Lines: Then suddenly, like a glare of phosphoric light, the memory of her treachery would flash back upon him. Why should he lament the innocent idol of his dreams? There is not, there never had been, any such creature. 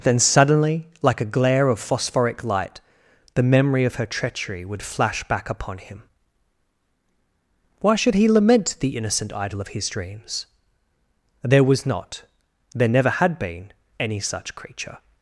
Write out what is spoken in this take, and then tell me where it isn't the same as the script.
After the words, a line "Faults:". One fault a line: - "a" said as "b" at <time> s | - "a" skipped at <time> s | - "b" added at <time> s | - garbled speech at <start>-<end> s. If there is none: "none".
Then suddenly, like a glare of phosphoric light, the memory of her treachery would flash back upon him. Why should he lament the innocent idol of his dreams? There was not, there never had been, any such creature.
Faults:
- "is" said as "was" at 11.6 s